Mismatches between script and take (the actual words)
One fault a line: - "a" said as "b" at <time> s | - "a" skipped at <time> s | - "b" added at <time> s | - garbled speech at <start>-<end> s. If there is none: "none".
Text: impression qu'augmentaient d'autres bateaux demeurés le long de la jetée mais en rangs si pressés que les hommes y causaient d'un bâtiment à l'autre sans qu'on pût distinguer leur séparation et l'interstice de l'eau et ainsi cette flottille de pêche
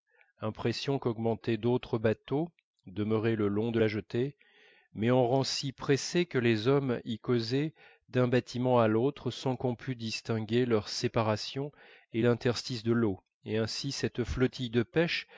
none